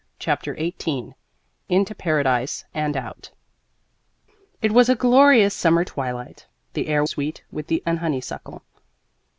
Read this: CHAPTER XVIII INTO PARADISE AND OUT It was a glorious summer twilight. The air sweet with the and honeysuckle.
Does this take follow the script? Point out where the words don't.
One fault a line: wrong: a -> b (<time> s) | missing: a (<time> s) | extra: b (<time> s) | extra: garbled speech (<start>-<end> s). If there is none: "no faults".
no faults